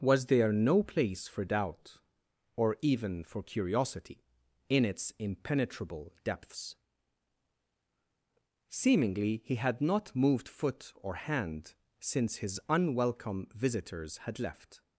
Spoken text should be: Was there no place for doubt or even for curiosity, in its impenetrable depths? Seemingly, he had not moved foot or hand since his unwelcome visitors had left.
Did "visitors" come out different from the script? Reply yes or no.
no